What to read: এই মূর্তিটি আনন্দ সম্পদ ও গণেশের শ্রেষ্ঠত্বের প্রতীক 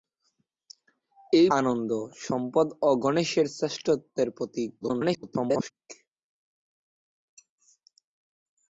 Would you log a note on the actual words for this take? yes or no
yes